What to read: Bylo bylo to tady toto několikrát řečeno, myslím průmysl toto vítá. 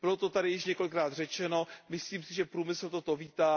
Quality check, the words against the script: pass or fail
fail